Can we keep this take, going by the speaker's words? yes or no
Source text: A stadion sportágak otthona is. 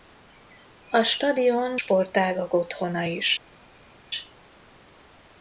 yes